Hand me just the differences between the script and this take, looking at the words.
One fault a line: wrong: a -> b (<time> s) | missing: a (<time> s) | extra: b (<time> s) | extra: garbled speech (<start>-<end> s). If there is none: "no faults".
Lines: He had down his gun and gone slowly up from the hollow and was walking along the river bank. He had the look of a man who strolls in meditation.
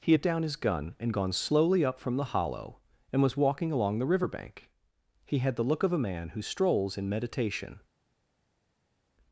no faults